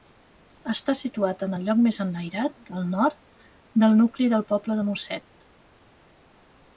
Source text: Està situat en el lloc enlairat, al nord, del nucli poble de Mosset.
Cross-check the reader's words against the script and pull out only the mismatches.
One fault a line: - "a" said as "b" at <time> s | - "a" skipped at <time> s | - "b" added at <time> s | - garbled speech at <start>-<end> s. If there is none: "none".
- "més" added at 1.9 s
- "del" added at 4.3 s